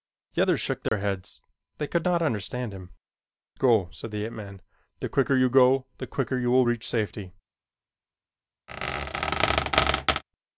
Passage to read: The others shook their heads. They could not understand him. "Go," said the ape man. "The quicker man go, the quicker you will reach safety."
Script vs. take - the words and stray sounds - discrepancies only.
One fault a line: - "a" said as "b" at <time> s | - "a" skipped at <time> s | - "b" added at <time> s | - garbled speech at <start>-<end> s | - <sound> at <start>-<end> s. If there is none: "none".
- dropout at 0.9-0.9 s
- "man" said as "you" at 5.3 s
- squeak at 8.7-10.2 s